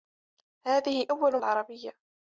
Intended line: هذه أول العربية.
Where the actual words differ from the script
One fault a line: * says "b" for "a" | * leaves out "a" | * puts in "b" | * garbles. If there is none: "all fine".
all fine